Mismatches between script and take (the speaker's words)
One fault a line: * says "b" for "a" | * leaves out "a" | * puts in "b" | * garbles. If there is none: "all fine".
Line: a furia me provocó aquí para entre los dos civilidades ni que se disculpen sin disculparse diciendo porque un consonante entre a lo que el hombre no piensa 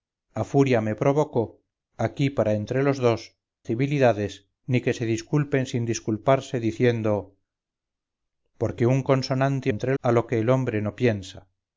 all fine